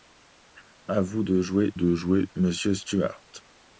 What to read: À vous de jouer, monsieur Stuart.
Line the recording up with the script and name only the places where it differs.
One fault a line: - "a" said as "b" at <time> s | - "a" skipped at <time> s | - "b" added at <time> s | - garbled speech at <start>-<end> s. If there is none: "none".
- "de jouer" added at 1.7 s